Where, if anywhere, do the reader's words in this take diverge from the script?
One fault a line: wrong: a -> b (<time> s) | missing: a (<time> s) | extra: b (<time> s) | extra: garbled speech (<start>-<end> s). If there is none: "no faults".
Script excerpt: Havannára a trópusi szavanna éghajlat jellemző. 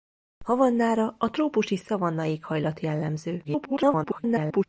extra: garbled speech (3.4-4.6 s)